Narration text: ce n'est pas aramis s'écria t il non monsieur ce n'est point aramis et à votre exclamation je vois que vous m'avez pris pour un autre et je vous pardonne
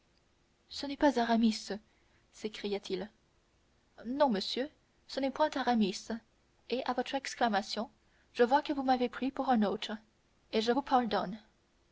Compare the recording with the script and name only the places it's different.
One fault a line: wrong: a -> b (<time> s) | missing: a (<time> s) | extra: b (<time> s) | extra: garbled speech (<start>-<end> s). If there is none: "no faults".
no faults